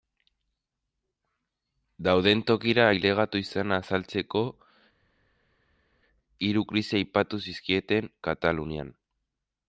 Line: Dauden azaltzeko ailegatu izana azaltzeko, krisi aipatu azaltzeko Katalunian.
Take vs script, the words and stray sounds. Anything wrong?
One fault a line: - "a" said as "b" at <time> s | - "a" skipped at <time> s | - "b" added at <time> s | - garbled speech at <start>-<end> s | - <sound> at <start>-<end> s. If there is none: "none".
- "azaltzeko" said as "tokira" at 2.5 s
- "hiru" added at 6.5 s
- "azaltzeko" said as "zizkieten" at 7.5 s